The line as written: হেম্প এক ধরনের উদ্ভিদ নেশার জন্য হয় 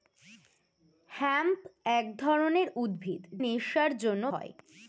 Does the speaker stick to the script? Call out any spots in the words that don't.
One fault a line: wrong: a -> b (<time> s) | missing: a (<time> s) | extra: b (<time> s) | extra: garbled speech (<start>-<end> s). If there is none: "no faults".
no faults